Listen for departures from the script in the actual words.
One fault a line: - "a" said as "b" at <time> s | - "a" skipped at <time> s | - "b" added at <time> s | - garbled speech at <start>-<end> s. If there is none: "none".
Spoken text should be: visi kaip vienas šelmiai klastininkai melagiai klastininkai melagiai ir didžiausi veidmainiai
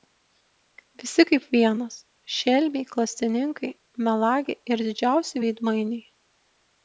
- "klastininkai melagiai" skipped at 4.7 s